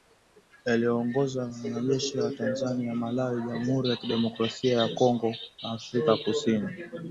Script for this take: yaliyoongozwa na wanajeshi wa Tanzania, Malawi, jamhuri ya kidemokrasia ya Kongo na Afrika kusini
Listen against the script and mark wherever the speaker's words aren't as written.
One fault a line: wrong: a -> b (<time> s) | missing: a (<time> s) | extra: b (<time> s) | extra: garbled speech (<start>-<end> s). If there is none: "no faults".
no faults